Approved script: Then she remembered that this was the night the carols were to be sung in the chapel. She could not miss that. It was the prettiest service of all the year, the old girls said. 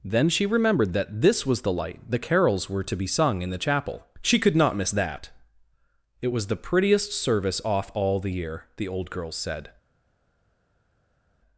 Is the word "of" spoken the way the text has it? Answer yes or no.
no